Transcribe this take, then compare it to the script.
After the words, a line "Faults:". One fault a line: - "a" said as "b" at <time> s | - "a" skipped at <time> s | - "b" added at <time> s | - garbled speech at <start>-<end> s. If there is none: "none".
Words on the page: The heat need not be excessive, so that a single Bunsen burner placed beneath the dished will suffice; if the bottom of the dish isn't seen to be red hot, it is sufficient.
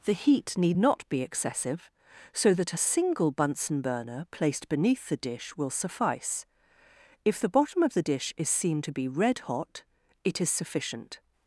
The heat need not be excessive, so that a single Bunsen burner placed beneath the dish will suffice; if the bottom of the dish is seen to be red hot, it is sufficient.
Faults:
- "dished" said as "dish" at 5.2 s
- "isn't" said as "is" at 8.4 s